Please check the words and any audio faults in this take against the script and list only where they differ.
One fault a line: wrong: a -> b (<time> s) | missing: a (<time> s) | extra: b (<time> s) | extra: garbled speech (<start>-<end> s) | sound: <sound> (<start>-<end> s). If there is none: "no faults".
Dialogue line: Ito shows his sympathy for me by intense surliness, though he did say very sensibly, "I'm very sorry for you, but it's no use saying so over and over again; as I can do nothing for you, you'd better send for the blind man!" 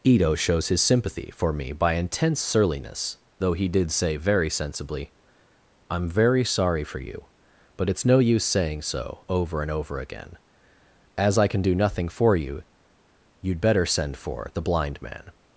no faults